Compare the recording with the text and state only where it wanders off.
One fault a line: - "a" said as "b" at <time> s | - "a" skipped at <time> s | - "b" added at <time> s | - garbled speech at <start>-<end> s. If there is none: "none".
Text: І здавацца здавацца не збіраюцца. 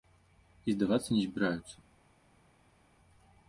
- "здавацца" skipped at 1.1 s